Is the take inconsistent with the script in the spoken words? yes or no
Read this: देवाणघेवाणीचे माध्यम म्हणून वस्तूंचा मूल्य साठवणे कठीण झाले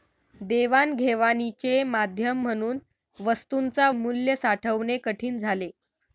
no